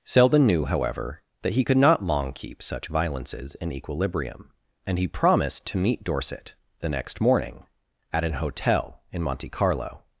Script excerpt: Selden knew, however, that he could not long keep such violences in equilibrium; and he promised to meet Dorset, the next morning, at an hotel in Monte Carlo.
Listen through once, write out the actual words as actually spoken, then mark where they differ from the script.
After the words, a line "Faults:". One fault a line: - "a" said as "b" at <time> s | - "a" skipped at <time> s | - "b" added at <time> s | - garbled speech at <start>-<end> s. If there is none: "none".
Selden knew, however, that he could not long keep such violences in equilibrium; and he promised to meet Dorset, the next morning, at an hotel in Monte Carlo.
Faults:
none